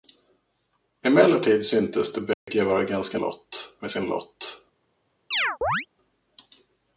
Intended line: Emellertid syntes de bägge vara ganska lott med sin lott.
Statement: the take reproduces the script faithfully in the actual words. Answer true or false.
true